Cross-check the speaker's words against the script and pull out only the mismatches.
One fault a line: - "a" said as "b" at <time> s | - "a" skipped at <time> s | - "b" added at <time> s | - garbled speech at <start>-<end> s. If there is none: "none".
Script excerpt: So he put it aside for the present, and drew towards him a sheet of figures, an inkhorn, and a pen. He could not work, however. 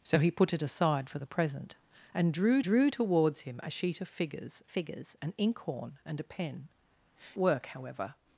- "drew" added at 2.6 s
- "figures" added at 4.7 s
- "He could not" skipped at 6.7 s